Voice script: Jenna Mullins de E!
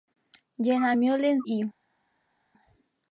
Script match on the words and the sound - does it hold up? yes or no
no